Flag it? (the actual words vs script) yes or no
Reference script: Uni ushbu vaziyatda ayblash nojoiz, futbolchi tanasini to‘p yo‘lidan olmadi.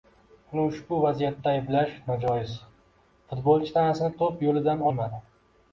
no